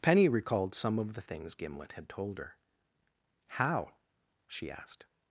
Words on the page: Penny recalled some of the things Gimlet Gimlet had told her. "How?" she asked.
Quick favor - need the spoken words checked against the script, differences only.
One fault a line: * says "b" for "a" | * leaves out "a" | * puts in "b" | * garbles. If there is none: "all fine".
* leaves out "Gimlet"